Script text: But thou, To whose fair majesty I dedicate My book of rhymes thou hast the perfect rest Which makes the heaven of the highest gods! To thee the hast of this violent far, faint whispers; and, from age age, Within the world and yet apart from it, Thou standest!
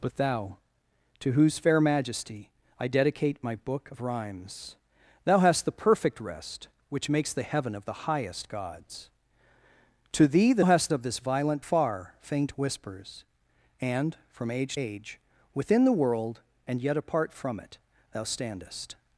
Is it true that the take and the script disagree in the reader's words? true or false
false